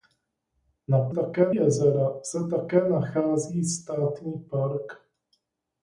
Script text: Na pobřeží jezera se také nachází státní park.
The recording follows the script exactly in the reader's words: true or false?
false